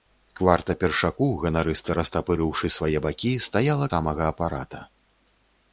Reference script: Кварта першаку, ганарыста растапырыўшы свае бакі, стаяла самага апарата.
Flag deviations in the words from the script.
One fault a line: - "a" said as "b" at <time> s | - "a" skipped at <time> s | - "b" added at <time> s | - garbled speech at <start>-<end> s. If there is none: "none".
none